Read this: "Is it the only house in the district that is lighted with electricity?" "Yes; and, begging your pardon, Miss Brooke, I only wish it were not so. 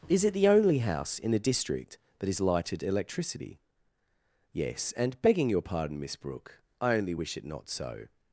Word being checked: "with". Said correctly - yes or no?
no